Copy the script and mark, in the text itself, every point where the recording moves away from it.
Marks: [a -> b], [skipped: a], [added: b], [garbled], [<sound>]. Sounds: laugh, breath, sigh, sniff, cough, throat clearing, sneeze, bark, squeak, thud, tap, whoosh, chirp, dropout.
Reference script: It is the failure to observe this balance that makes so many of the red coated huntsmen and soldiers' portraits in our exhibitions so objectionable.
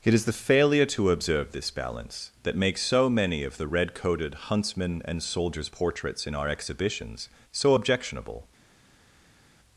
It is the failure to observe this balance that makes so many of the red coated huntsmen and soldiers' portraits in our exhibitions so objectionable.